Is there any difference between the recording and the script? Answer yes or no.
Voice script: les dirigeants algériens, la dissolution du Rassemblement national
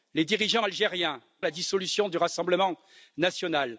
no